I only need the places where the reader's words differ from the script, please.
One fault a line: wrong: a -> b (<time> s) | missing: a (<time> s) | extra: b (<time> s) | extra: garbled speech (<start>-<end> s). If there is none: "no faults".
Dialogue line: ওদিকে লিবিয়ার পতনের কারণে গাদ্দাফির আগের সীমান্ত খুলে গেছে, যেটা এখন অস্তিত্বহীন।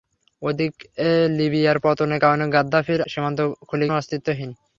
missing: আগের (3.0 s)
missing: গেছে যেটা এখন (3.9 s)